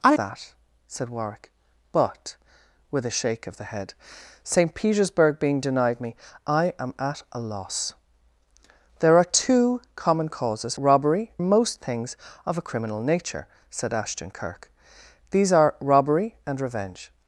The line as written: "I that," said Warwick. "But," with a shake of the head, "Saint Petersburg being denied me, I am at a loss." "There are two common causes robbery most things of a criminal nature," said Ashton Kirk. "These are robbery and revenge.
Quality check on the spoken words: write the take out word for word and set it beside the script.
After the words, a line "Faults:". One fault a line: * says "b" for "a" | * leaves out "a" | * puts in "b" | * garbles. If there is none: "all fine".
"I that," said Warwick. "But," with a shake of the head, "Saint Petersburg being denied me, I am at a loss." "There are two common causes robbery most things of a criminal nature," said Ashton Kirk. "These are robbery and revenge.
Faults:
all fine